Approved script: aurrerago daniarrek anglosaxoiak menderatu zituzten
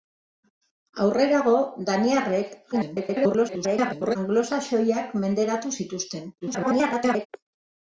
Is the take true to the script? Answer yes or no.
no